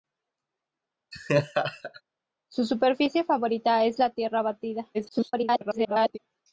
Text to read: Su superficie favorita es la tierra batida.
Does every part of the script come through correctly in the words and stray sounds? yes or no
no